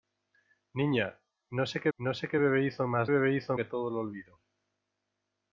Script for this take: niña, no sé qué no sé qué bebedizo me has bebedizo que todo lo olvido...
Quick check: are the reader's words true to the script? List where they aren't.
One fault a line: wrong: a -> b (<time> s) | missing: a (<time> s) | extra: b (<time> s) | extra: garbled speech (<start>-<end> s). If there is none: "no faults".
no faults